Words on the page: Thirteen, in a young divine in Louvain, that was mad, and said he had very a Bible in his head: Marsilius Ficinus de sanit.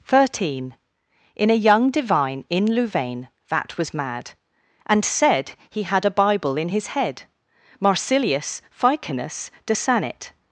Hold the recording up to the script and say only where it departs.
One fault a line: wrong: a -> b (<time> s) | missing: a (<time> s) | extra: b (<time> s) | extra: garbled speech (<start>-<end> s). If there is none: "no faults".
missing: very (6.0 s)